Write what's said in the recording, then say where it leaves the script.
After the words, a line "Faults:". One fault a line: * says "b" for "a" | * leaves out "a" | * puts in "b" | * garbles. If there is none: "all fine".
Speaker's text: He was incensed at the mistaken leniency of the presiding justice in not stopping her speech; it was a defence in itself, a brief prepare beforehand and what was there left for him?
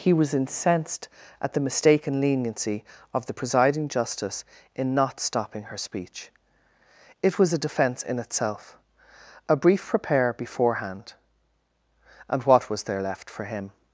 He was incensed at the mistaken leniency of the presiding justice in not stopping her speech; it was a defence in itself, a brief prepare beforehand and what was there left for him?
Faults:
all fine